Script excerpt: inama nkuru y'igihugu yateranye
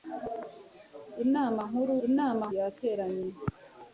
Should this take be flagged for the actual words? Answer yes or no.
yes